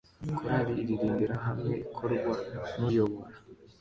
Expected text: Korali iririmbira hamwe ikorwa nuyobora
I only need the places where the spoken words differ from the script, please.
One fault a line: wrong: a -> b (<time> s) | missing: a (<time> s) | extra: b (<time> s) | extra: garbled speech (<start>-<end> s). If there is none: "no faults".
no faults